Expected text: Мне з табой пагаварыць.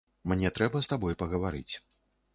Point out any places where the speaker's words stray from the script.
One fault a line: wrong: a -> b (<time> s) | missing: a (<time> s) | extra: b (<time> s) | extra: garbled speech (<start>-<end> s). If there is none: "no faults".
extra: трэба (0.6 s)